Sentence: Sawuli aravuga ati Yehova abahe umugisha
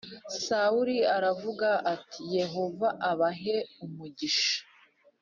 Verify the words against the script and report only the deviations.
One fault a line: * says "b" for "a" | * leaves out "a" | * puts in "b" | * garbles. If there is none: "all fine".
all fine